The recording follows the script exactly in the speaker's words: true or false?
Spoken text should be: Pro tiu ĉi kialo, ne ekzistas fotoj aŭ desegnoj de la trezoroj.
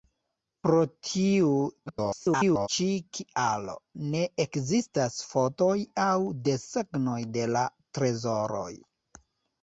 false